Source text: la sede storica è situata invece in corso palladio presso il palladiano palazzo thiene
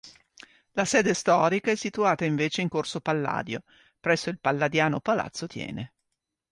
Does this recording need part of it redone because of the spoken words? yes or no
no